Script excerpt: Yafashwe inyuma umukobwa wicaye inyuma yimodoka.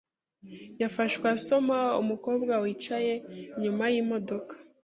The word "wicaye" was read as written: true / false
true